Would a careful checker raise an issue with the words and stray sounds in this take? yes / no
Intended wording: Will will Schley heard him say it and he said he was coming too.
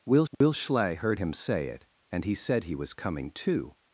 yes